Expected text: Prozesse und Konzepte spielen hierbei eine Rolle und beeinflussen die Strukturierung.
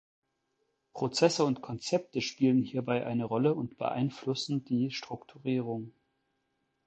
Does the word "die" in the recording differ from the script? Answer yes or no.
no